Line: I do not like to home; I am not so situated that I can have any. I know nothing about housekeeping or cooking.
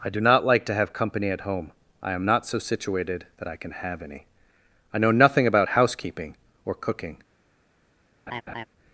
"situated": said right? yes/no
yes